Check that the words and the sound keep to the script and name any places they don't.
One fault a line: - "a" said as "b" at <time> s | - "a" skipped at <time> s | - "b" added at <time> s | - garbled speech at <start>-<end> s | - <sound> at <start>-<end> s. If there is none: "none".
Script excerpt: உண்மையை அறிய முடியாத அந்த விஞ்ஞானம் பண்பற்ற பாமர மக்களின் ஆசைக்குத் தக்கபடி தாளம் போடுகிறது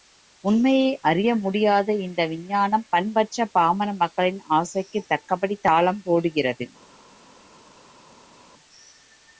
- "அந்த" said as "இந்த" at 2.0 s